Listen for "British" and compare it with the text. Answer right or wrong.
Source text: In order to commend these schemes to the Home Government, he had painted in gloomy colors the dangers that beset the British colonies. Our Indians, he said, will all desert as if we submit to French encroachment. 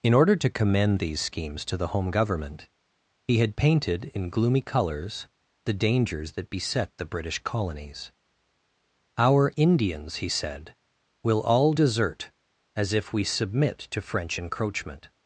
right